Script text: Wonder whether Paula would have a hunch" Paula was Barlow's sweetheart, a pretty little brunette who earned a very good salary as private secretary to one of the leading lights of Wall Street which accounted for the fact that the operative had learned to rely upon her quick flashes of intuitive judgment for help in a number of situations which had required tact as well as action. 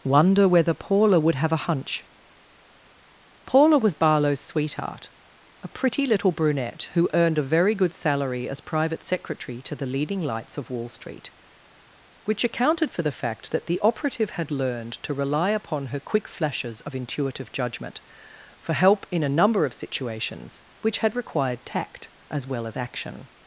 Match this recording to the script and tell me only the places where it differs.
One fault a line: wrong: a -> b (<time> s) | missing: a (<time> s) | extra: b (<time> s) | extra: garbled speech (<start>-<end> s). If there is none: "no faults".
missing: one of (9.8 s)